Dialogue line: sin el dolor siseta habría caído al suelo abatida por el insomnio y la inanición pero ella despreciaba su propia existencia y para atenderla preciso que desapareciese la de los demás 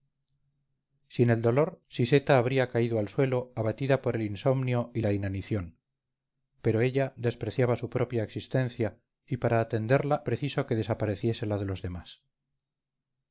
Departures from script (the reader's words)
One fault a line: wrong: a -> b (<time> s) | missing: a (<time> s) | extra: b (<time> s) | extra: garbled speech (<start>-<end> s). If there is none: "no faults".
no faults